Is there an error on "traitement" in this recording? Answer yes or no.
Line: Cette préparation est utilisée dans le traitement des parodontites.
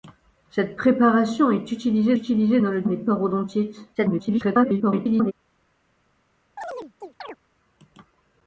yes